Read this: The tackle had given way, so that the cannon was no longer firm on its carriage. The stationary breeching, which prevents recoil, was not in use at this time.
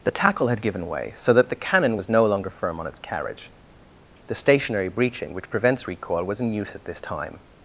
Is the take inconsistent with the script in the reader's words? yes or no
yes